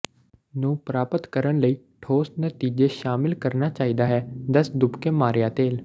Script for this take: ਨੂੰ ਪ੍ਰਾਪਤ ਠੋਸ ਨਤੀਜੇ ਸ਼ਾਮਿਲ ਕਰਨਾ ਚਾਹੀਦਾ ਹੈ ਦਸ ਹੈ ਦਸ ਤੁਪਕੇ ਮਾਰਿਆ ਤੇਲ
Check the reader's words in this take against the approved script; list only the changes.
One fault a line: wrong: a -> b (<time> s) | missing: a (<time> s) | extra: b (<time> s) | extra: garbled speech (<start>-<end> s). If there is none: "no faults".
extra: ਕਰਨ ਲਈ (1.3 s)
missing: ਹੈ ਦਸ (4.7 s)